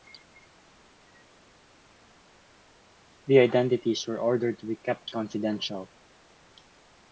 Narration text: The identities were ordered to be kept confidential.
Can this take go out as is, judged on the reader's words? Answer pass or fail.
pass